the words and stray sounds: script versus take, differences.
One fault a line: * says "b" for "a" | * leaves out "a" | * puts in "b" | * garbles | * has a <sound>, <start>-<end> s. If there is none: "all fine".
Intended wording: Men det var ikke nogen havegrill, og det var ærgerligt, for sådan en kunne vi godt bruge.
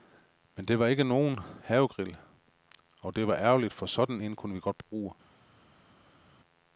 all fine